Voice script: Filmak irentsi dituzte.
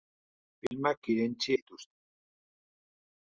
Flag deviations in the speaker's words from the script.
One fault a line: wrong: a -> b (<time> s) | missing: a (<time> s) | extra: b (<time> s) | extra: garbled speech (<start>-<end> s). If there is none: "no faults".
no faults